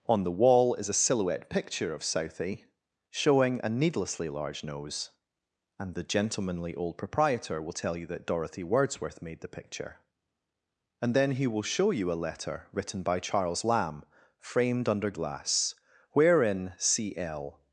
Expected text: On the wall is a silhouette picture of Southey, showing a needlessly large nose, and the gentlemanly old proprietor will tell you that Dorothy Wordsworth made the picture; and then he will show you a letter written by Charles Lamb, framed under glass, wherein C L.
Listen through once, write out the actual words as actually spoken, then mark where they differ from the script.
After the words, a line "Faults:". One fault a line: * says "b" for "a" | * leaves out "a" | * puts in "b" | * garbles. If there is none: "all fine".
On the wall is a silhouette picture of Southey, showing a needlessly large nose, and the gentlemanly old proprietor will tell you that Dorothy Wordsworth made the picture; and then he will show you a letter written by Charles Lamb, framed under glass, wherein C L.
Faults:
all fine